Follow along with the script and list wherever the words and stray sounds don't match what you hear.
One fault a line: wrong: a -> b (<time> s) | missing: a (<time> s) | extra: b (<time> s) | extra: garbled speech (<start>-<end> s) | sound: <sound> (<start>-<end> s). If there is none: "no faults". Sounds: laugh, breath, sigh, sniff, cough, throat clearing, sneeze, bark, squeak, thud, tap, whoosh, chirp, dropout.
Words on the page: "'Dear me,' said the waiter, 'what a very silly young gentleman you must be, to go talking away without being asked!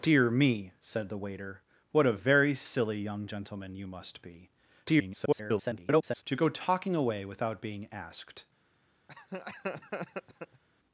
extra: garbled speech (4.9-6.2 s)
sound: laugh (9.1-10.6 s)